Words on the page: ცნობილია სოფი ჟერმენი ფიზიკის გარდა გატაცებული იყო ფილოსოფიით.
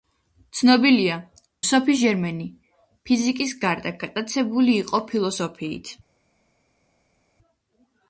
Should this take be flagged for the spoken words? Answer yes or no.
no